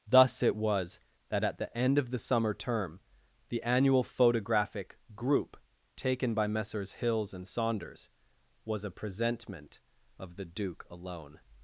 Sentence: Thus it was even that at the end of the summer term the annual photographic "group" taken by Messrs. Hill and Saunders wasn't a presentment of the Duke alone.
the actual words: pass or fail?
fail